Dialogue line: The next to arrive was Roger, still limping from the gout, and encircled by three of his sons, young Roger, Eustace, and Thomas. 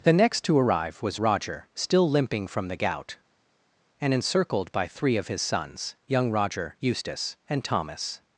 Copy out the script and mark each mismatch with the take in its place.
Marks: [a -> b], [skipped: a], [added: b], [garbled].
The next to arrive was Roger, still limping from the gout, and encircled by three of his sons, young Roger, Eustace, and Thomas.